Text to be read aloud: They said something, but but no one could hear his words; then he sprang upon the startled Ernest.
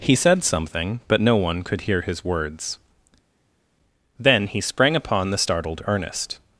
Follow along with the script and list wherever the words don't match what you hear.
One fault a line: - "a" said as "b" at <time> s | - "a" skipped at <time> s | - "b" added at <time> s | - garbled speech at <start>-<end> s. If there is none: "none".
- "They" said as "He" at 0.0 s
- "but" skipped at 1.2 s